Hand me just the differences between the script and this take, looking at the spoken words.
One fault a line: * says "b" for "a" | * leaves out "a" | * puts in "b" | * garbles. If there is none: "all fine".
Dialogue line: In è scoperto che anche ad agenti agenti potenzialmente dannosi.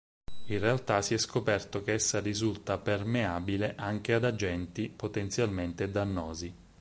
* puts in "realtà si"
* puts in "essa risulta permeabile"
* leaves out "agenti"